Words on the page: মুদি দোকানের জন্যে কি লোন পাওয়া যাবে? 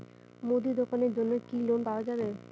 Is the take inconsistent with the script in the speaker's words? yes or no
no